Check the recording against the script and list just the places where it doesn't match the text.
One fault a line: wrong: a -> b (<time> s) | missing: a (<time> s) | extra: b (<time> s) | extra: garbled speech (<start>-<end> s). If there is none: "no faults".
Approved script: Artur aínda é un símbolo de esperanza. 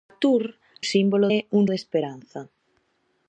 wrong: aínda -> símbolo (0.9 s)
missing: símbolo (1.6 s)